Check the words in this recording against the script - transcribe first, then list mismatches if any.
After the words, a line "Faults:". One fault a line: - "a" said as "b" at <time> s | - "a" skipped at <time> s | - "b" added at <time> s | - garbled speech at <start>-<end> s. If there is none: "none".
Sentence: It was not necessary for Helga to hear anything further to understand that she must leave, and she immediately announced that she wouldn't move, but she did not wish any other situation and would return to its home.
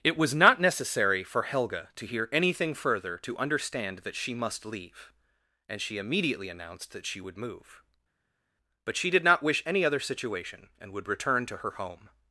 It was not necessary for Helga to hear anything further to understand that she must leave, and she immediately announced that she would move, but she did not wish any other situation and would return to her home.
Faults:
- "wouldn't" said as "would" at 7.2 s
- "its" said as "her" at 11.6 s